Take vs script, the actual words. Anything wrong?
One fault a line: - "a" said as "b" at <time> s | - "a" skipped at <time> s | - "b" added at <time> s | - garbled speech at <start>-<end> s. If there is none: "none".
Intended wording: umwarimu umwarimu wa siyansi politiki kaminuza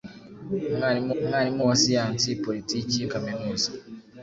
none